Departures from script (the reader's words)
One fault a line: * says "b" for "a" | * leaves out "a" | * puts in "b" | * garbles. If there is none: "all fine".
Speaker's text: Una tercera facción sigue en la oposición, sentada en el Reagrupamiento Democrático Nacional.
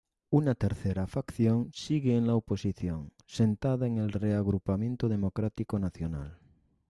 all fine